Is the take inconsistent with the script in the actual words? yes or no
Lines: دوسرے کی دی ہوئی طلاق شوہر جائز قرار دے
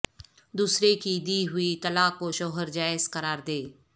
yes